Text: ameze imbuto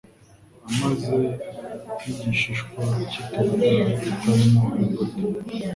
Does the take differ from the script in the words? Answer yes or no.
yes